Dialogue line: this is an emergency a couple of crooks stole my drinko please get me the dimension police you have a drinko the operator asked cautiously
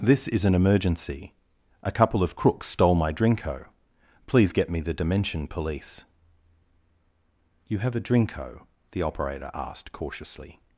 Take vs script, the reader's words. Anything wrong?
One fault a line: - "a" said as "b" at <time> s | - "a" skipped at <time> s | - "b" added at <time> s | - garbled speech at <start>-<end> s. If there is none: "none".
none